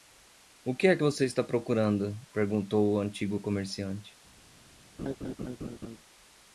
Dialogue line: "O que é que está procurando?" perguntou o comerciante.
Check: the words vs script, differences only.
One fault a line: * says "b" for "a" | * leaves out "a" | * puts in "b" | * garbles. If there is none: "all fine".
* puts in "você"
* puts in "antigo"